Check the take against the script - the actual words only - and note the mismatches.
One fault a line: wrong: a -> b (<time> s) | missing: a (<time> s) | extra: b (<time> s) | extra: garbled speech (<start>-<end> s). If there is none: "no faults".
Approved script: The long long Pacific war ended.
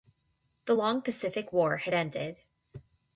missing: long (1.0 s)
extra: had (1.8 s)